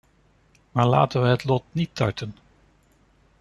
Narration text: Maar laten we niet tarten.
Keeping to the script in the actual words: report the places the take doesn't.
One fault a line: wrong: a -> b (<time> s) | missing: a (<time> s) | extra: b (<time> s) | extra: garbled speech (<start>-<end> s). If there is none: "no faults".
extra: het lot (1.3 s)